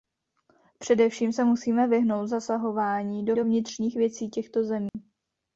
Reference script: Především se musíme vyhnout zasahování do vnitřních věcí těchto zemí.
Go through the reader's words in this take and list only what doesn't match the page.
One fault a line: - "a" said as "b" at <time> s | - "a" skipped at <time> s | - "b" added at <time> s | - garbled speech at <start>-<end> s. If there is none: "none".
- "do" added at 3.3 s